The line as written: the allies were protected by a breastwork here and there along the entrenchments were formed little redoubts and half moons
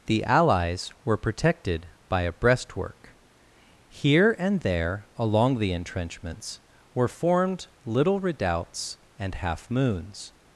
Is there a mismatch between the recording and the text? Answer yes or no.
no